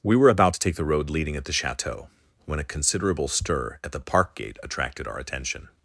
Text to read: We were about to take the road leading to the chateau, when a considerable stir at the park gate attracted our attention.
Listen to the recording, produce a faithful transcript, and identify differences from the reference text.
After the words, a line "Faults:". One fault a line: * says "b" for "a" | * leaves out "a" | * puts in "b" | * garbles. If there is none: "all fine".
We were about to take the road leading at the chateau, when a considerable stir at the park gate attracted our attention.
Faults:
* says "at" for "to"